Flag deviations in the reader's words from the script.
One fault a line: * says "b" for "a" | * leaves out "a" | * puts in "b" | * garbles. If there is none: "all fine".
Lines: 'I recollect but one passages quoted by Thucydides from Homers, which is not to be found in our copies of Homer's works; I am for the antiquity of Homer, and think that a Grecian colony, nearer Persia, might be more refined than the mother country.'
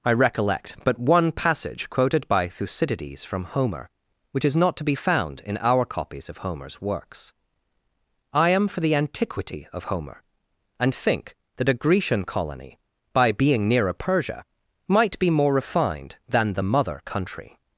* says "passage" for "passages"
* says "Homer" for "Homers"
* puts in "by being"